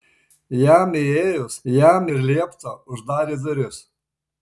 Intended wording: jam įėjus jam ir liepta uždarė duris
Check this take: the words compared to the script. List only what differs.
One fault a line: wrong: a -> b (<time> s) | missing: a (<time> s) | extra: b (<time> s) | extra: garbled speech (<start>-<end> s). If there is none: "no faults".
no faults